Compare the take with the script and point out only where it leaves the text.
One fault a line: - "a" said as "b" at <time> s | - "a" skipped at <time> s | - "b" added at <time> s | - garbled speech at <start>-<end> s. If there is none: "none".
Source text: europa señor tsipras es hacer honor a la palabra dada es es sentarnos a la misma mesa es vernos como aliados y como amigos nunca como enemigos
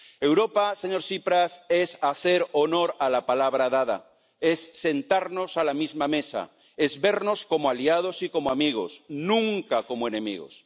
- "es" skipped at 4.7 s